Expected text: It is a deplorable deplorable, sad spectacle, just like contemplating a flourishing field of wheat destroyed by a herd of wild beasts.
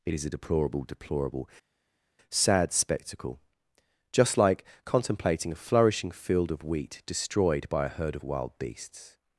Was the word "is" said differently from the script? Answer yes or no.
no